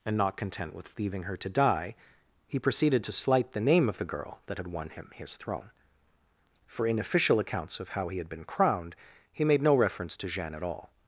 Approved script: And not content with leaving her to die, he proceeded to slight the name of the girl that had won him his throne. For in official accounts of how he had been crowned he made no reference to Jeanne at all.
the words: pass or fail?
pass